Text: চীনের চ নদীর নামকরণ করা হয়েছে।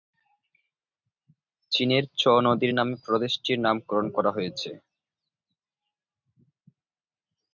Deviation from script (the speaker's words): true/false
true